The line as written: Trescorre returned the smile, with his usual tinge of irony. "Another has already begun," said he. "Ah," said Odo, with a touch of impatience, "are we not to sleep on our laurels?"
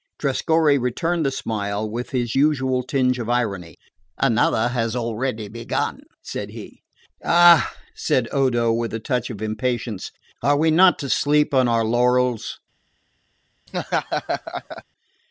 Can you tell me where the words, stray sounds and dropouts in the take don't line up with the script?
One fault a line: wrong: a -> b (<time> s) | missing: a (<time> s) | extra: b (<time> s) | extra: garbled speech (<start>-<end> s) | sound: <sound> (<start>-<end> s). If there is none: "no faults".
sound: laugh (13.7-14.8 s)